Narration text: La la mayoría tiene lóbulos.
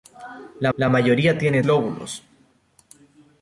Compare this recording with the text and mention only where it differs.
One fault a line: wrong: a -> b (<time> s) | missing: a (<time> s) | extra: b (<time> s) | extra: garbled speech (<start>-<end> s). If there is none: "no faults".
no faults